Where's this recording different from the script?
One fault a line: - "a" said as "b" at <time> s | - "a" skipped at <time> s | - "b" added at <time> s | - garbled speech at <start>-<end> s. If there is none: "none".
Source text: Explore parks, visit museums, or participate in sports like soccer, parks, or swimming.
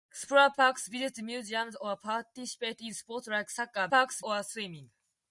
none